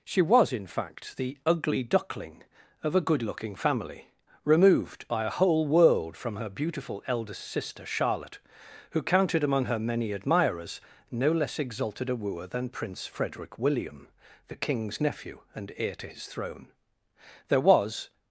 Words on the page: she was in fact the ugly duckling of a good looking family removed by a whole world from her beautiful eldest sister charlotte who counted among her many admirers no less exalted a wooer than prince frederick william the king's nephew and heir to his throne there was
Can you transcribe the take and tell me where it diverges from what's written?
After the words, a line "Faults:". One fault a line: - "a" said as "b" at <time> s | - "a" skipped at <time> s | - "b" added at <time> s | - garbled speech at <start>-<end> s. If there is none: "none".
she was in fact the ugly duckling of a good looking family removed by a whole world from her beautiful eldest sister charlotte who counted among her many admirers no less exalted a wooer than prince frederick william the king's nephew and heir to his throne there was
Faults:
none